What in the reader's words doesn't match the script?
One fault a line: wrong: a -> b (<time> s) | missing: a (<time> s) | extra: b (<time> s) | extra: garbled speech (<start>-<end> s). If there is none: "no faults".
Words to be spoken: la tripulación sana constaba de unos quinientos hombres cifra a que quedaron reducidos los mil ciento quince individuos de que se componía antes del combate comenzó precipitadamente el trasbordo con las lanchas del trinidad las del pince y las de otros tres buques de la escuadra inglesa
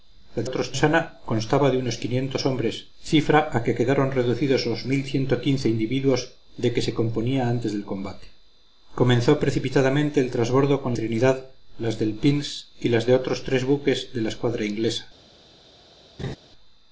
wrong: tripulación -> otros (0.5 s)
missing: las lanchas del (10.9 s)